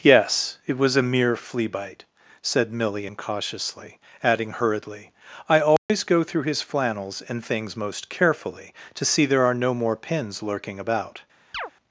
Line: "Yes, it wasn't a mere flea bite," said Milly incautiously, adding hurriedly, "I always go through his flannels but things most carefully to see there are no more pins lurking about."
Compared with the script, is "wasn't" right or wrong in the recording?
wrong